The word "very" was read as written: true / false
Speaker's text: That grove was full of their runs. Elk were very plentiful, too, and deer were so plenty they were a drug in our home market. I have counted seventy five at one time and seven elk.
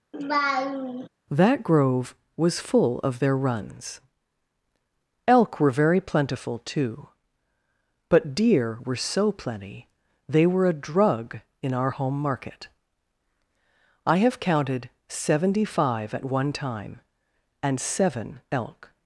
true